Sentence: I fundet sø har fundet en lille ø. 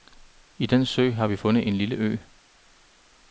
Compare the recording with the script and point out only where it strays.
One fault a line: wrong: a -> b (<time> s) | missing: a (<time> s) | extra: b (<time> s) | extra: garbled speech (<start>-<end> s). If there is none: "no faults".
wrong: fundet -> den (0.7 s)
extra: vi (1.2 s)